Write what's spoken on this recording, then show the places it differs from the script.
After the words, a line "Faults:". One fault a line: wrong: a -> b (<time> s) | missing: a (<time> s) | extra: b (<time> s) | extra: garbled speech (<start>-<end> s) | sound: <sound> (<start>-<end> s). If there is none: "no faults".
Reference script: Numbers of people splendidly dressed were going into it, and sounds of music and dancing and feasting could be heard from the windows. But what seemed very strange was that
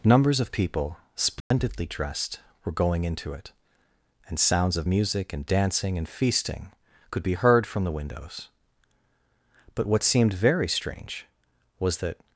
Numbers of people splendidly dressed were going into it, and sounds of music and dancing and feasting could be heard from the windows. But what seemed very strange was that
Faults:
sound: dropout (1.4-1.5 s)